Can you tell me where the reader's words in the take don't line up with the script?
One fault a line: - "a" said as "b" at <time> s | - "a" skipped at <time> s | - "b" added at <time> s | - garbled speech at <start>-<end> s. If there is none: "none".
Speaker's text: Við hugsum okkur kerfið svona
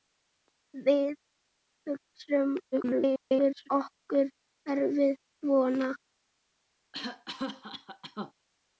- garbled speech at 2.7-3.7 s